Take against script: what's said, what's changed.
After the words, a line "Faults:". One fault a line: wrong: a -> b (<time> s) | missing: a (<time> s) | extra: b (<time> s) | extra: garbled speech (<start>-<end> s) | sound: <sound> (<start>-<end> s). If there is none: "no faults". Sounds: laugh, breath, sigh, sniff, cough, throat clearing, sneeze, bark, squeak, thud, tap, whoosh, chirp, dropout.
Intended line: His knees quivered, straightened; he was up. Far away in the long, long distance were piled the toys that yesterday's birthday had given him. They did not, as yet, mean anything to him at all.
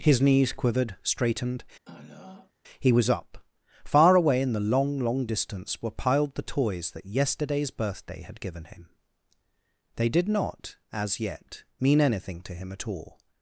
His knees quivered, straightened; he was up. Far away in the long, long distance were piled the toys that yesterday's birthday had given him. They did not, as yet, mean anything to him at all.
Faults:
sound: throat clearing (1.9-2.5 s)